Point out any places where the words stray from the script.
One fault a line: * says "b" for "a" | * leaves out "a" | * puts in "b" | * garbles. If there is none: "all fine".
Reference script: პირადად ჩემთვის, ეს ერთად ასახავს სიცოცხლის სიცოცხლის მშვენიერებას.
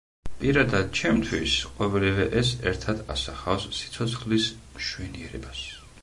* puts in "ყოველივე"
* leaves out "სიცოცხლის"